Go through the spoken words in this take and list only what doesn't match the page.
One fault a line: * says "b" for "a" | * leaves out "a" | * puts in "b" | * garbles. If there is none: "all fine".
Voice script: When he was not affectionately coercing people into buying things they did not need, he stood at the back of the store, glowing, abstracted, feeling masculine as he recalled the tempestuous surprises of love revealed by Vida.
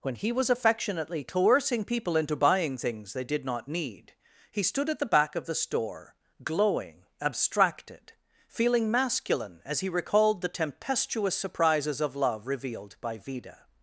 * leaves out "not"